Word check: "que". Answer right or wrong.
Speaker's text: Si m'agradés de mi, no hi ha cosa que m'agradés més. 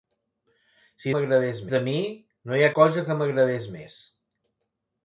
right